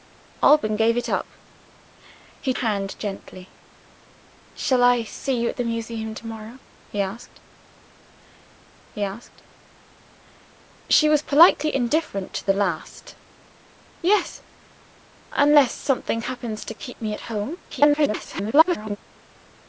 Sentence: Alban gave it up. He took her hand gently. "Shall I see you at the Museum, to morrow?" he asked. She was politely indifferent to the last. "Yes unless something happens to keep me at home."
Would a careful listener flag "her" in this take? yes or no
yes